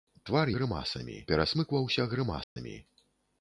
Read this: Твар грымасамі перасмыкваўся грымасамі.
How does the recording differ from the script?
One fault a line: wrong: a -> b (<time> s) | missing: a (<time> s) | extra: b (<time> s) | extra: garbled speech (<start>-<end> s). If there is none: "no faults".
no faults